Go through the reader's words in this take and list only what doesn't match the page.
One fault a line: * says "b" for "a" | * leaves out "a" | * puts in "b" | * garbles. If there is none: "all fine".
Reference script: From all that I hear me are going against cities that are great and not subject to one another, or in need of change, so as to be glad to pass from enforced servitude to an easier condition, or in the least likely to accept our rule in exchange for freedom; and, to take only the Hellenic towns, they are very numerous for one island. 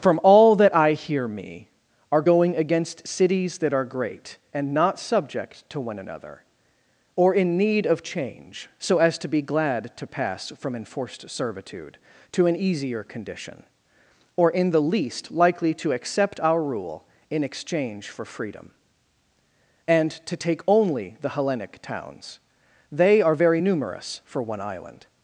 all fine